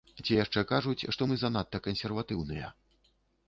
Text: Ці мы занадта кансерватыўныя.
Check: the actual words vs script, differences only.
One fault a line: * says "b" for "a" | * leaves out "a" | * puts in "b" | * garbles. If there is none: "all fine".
* puts in "яшчэ кажуць што"